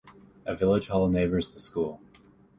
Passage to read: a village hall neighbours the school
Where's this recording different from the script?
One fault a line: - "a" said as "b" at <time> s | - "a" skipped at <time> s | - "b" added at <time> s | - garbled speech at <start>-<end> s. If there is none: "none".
none